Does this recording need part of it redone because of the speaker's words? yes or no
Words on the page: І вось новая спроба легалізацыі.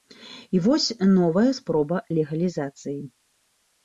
no